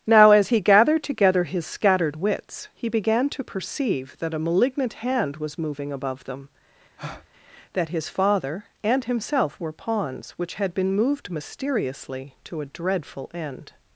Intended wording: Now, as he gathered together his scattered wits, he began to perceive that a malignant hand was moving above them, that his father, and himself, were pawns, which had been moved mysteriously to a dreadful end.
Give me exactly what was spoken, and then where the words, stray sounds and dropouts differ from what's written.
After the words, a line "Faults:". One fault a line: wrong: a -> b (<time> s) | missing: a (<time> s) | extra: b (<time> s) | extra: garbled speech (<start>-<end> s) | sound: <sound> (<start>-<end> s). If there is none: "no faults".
Now, as he gathered together his scattered wits, he began to perceive that a malignant hand was moving above them, that his father, and himself, were pawns, which had been moved mysteriously to a dreadful end.
Faults:
sound: breath (7.0-7.3 s)